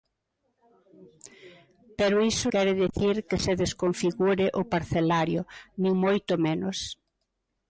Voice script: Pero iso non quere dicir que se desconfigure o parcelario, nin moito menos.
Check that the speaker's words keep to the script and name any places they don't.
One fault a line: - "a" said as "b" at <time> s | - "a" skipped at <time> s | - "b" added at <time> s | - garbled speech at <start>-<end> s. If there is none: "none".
- "non" skipped at 2.5 s